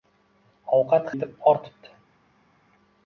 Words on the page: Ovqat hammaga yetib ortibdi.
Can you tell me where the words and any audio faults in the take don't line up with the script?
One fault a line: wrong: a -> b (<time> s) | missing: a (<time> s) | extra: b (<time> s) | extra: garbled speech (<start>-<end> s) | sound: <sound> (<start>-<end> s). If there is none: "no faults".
missing: hammaga (1.1 s)